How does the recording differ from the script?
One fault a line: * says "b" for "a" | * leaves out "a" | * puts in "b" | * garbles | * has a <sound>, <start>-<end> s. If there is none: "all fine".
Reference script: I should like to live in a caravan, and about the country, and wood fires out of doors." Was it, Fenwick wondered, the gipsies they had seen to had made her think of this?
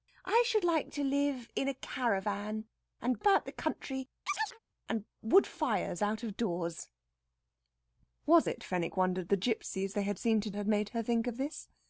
* has a chirp, 4.3-4.6 s